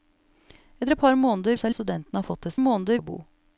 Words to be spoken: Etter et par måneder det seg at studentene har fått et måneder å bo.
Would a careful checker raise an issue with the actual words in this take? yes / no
no